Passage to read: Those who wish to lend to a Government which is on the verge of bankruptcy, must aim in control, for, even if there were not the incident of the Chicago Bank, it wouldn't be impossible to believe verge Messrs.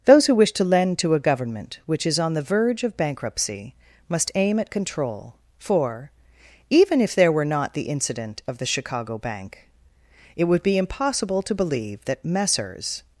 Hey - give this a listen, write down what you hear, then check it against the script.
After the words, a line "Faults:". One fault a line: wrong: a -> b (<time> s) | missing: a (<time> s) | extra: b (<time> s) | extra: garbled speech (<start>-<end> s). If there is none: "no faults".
Those who wish to lend to a Government which is on the verge of bankruptcy, must aim at control, for, even if there were not the incident of the Chicago Bank, it would be impossible to believe that Messrs.
Faults:
wrong: in -> at (4.6 s)
wrong: wouldn't -> would (10.4 s)
wrong: verge -> that (12.1 s)